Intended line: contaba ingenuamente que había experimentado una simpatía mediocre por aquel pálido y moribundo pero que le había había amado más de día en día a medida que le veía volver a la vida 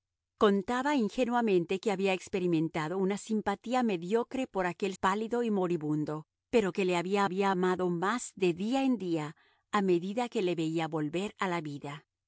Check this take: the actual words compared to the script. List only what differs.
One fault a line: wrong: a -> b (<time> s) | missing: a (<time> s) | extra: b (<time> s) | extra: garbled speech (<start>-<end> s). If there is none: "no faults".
no faults